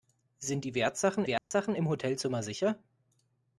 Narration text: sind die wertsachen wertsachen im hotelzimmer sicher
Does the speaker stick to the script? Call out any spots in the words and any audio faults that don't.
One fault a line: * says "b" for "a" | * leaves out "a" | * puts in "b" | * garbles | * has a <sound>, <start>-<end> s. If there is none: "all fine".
* has a dropout, 1.4-1.5 s